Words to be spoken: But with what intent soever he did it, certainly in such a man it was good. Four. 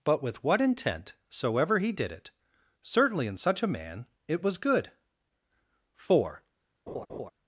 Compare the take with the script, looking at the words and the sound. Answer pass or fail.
fail